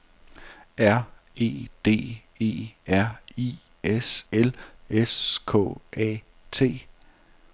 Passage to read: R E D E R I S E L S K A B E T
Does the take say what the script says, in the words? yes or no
no